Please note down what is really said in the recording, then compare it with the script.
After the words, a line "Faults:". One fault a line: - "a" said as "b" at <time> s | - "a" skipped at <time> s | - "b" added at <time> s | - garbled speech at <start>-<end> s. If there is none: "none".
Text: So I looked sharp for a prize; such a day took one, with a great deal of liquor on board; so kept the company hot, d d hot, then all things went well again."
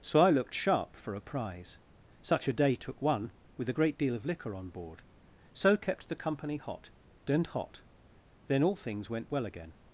So I looked sharp for a prize; such a day took one, with a great deal of liquor on board; so kept the company hot, and hot, then all things went well again."
Faults:
- "d d" said as "and" at 7.3 s